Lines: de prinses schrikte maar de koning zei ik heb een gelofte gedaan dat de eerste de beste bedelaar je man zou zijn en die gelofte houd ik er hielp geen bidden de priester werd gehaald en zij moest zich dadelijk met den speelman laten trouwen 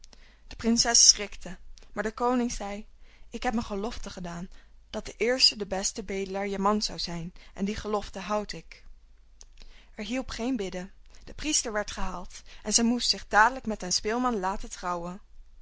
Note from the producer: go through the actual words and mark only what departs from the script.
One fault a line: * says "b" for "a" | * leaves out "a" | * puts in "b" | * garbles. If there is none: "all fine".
all fine